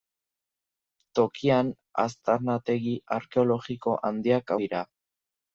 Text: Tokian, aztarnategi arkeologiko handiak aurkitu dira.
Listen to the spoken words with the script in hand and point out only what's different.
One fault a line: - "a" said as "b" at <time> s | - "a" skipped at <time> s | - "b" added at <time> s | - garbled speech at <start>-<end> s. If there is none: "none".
- "aurkitu" skipped at 4.5 s